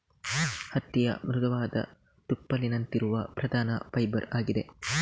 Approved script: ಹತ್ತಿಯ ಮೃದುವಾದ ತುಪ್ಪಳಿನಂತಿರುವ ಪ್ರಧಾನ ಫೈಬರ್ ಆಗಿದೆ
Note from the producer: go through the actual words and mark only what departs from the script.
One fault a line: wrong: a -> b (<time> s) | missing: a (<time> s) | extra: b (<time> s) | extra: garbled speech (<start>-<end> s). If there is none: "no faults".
no faults